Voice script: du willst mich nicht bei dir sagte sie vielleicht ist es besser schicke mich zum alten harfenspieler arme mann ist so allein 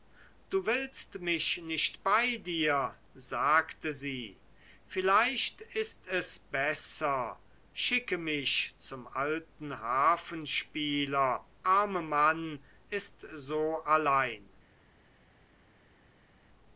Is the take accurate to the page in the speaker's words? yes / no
yes